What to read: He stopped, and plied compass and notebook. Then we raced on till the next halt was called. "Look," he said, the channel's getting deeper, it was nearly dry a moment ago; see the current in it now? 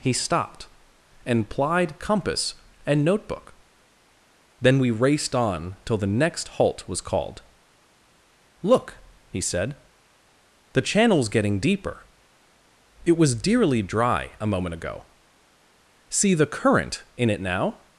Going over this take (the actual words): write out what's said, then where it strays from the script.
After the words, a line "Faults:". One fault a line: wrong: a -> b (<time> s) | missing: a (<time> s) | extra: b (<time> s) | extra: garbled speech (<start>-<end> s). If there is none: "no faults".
He stopped, and plied compass and notebook. Then we raced on till the next halt was called. "Look," he said, the channel's getting deeper, it was dearly dry a moment ago; see the current in it now?
Faults:
wrong: nearly -> dearly (13.4 s)